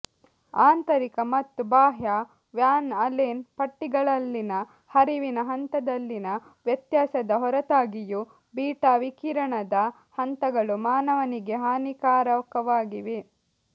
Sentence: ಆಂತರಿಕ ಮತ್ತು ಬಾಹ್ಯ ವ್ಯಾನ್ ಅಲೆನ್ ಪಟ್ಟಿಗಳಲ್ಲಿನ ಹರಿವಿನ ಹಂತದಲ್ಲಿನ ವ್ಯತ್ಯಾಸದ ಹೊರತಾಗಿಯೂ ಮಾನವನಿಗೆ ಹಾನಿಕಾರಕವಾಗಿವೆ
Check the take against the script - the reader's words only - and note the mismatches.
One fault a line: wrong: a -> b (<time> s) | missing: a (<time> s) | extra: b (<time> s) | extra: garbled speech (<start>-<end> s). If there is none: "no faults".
extra: ಬೀಟಾ ವಿಕಿರಣದ ಹಂತಗಳು (8.5 s)